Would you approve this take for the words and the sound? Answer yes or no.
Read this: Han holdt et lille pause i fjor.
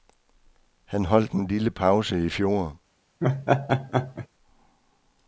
no